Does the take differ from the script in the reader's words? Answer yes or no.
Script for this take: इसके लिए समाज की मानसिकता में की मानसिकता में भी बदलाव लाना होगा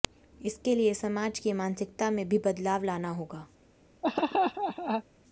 yes